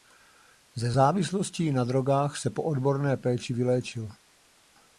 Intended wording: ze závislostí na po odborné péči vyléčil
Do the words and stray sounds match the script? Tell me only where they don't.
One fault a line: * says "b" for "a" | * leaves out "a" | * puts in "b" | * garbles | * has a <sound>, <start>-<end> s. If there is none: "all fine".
* puts in "drogách se"